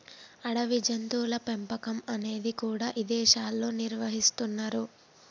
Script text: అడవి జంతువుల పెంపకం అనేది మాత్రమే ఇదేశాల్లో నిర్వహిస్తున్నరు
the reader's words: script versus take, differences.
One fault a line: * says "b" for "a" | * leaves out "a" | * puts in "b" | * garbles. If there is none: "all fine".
* says "కూడా" for "మాత్రమే"